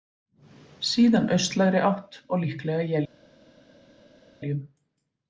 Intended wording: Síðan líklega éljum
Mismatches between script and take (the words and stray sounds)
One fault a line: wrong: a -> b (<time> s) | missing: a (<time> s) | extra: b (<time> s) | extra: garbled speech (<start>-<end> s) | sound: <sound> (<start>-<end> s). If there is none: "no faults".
extra: austlægri átt og (1.4 s)